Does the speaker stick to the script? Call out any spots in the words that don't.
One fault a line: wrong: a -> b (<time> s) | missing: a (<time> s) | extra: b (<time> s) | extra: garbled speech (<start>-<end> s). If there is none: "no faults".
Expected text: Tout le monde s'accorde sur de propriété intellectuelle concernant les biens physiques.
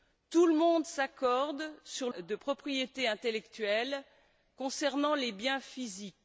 no faults